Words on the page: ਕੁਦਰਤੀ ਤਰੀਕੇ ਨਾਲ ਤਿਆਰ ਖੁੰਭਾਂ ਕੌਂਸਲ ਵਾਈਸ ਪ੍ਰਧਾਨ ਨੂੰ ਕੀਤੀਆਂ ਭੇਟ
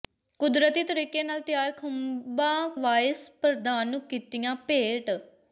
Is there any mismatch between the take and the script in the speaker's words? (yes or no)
yes